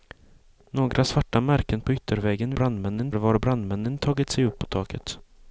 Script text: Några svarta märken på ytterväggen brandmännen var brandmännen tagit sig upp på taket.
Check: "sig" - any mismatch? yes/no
no